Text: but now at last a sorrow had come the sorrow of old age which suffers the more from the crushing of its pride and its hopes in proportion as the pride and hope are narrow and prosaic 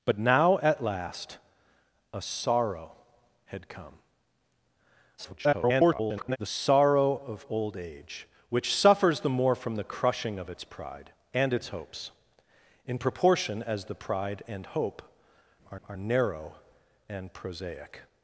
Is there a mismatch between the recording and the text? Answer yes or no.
yes